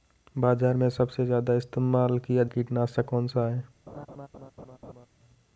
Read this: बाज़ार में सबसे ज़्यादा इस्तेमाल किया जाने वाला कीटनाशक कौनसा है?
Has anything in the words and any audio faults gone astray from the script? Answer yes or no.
yes